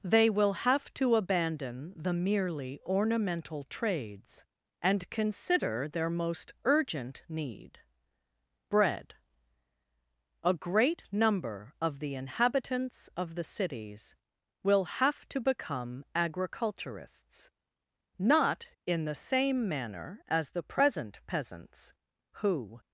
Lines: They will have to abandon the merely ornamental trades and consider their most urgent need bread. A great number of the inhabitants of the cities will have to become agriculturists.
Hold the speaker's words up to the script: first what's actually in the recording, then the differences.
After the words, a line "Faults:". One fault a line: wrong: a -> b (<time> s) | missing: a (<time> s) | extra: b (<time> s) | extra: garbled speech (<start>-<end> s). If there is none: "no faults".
They will have to abandon the merely ornamental trades and consider their most urgent need bread. A great number of the inhabitants of the cities will have to become agriculturists. Not in the same manner as the present peasants who
Faults:
extra: Not in the same manner as the present peasants who (18.2 s)